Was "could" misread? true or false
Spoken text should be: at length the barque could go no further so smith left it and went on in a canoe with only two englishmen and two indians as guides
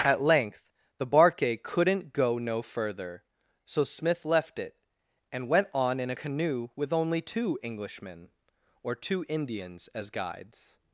true